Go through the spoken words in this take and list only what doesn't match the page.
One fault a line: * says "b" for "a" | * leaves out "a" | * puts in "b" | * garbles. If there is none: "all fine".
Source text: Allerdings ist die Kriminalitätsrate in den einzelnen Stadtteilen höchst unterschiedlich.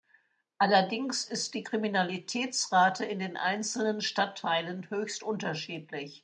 all fine